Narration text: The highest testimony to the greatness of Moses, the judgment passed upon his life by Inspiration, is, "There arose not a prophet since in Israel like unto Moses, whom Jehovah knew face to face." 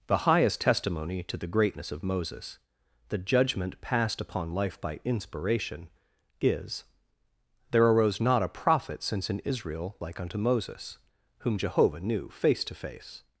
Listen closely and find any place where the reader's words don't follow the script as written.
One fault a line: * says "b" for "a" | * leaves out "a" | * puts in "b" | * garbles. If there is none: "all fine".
* leaves out "his"